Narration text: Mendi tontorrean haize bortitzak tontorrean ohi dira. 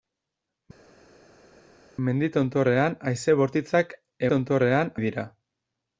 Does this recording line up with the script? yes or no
yes